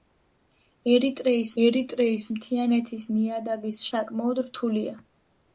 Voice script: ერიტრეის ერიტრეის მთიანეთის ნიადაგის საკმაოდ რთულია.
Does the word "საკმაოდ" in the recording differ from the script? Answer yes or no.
no